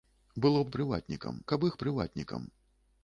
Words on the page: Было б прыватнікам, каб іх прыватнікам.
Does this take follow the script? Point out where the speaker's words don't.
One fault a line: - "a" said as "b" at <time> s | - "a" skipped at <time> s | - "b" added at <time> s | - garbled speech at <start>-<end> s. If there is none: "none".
none